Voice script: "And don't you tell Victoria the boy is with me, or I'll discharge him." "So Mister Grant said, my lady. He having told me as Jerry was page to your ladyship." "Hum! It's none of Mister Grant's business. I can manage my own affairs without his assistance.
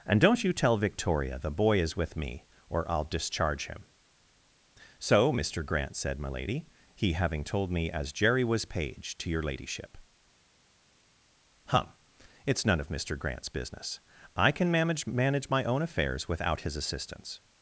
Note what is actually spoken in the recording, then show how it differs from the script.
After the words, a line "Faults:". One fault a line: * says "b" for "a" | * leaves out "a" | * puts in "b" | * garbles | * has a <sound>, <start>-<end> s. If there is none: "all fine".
"And don't you tell Victoria the boy is with me, or I'll discharge him." "So Mister Grant said, my lady. He having told me as Jerry was page to your ladyship." "Hum! It's none of Mister Grant's business. I can manage manage my own affairs without his assistance.
Faults:
* puts in "manage"